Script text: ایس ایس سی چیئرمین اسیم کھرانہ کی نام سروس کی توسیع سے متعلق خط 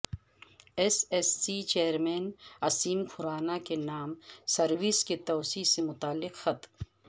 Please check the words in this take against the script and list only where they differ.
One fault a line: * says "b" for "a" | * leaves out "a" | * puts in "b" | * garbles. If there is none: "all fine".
* says "کے" for "کی"